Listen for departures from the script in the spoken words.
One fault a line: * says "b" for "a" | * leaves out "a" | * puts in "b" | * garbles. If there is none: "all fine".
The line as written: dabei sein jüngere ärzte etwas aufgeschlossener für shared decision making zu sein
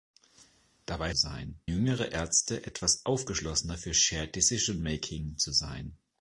all fine